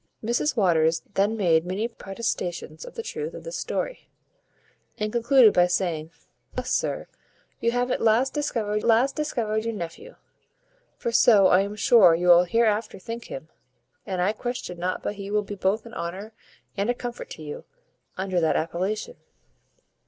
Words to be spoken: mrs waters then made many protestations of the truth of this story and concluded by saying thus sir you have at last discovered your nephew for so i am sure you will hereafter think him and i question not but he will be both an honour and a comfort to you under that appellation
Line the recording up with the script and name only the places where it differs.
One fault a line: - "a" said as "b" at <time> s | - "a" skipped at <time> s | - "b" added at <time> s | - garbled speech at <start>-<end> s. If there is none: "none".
- "last discovered" added at 8.8 s